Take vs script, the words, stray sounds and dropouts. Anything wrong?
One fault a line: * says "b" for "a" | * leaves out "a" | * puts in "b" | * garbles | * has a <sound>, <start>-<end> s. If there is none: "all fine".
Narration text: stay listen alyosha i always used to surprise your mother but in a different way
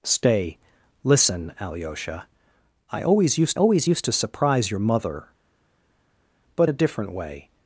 * puts in "always used"
* leaves out "in"